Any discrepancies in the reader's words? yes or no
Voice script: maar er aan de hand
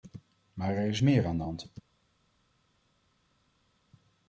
yes